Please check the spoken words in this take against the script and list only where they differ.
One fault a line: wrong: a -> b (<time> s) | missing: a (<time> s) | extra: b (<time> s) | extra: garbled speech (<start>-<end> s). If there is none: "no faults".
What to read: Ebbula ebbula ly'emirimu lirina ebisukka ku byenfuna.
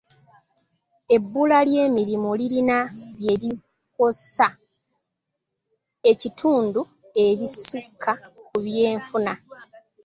missing: ebbula (1.6 s)
extra: bye likosa ekitundu (3.2 s)